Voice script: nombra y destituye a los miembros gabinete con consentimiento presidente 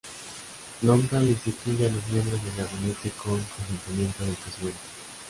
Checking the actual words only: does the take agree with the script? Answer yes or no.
no